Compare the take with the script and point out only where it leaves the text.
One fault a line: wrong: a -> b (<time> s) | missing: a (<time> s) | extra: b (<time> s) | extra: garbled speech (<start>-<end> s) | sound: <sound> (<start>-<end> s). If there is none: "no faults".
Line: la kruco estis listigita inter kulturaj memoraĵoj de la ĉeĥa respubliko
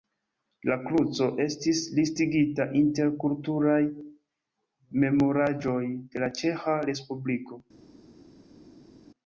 no faults